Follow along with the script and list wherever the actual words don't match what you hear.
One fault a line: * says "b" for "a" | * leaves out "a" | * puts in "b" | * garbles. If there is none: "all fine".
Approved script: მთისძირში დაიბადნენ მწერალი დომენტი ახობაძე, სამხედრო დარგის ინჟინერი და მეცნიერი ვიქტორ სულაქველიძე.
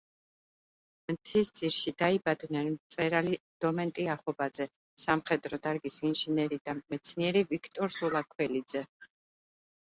all fine